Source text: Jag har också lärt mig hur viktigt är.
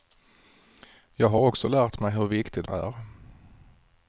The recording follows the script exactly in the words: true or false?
true